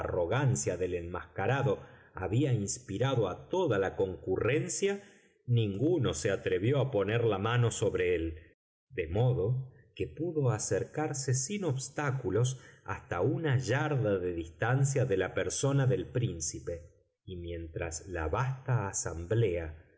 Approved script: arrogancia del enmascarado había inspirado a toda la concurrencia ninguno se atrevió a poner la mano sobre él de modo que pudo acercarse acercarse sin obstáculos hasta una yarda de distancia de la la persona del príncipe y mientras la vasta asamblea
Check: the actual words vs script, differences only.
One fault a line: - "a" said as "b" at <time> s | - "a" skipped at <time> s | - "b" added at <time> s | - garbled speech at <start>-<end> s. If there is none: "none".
- "acercarse" skipped at 11.3 s
- "la" skipped at 15.3 s